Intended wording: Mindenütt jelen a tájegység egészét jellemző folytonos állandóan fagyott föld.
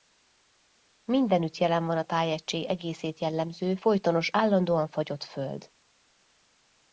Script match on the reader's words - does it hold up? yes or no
no